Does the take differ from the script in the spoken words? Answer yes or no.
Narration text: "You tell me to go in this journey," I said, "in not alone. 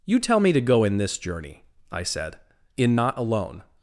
no